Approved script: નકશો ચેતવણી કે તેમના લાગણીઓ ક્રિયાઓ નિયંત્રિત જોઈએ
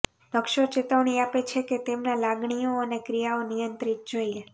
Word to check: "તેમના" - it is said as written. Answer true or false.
true